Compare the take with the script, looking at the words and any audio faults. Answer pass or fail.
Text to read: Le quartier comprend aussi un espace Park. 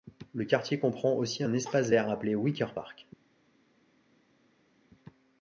fail